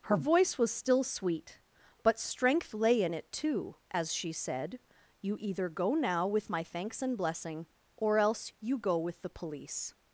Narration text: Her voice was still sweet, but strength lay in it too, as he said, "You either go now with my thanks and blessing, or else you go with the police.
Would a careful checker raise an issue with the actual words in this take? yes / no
yes